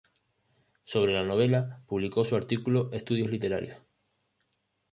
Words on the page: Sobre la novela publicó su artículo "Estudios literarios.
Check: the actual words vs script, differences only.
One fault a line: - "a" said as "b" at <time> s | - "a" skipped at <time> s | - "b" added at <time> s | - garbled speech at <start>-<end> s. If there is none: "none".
none